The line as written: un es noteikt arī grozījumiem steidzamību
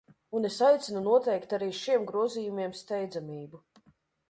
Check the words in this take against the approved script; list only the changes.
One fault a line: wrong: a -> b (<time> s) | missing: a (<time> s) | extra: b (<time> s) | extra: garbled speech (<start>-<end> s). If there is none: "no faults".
extra: aicinu (0.7 s)
extra: šiem (1.8 s)